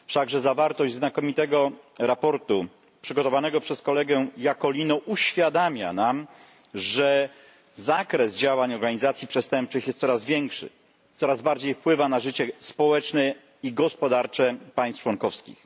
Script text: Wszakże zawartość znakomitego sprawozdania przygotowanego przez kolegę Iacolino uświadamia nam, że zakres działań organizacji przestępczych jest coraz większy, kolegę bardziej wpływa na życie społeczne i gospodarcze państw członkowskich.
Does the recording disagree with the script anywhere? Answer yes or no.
yes